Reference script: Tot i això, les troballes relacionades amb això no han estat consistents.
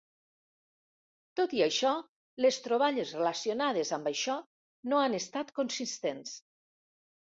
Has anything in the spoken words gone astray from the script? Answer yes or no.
no